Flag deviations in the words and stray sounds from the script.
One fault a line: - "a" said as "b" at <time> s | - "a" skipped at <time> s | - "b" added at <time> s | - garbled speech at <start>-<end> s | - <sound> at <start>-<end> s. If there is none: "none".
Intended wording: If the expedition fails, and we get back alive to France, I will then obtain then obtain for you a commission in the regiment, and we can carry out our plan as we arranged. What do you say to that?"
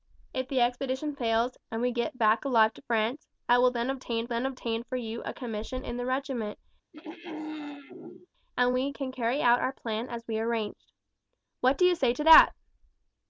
- throat clearing at 6.9-8.3 s